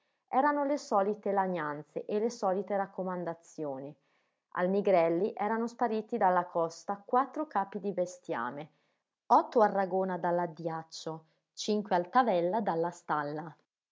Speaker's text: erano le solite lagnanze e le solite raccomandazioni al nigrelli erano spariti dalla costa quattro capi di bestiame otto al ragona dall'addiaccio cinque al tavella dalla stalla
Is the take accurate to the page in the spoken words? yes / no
yes